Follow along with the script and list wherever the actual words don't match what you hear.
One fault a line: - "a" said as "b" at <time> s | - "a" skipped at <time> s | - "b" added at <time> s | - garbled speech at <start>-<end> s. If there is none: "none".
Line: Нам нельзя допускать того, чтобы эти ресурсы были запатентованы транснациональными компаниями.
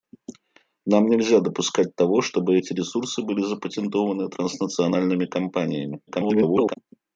- garbled speech at 6.1-6.8 s